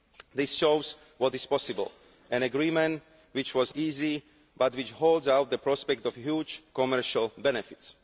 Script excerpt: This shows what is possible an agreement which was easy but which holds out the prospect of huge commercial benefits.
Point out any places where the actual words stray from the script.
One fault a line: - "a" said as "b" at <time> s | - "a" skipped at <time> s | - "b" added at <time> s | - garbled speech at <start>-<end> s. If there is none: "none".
none